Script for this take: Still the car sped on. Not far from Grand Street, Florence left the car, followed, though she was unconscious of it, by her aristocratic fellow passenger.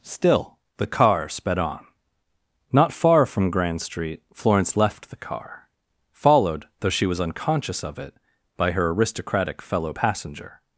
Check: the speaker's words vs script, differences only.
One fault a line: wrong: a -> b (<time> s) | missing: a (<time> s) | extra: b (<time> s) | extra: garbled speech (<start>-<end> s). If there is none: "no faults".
no faults